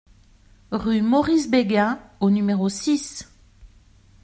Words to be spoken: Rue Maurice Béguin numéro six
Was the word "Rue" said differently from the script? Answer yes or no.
no